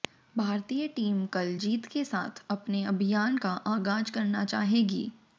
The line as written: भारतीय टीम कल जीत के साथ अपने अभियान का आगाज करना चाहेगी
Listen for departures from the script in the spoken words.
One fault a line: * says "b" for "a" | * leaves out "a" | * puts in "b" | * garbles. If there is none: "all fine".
all fine